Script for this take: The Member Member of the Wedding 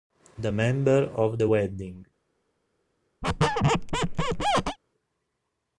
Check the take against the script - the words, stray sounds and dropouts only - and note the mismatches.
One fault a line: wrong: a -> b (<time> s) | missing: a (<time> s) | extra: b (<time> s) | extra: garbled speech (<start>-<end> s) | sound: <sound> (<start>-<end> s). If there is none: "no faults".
missing: Member (1.1 s)
sound: squeak (3.2-4.8 s)